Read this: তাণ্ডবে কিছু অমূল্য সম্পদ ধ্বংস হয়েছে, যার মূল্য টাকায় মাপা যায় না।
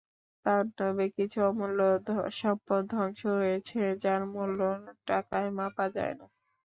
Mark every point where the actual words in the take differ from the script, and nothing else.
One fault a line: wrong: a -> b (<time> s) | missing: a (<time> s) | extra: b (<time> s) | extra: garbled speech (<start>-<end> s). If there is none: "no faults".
no faults